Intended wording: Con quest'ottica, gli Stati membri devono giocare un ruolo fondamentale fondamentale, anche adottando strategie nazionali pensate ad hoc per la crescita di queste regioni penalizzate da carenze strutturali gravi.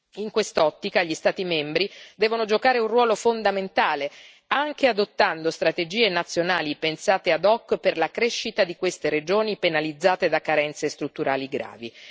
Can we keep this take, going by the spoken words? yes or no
no